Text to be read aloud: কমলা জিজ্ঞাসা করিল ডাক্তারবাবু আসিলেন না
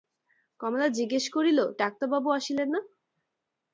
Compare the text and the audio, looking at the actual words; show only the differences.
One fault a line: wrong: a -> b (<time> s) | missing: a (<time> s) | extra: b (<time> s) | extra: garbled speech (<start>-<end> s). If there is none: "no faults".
no faults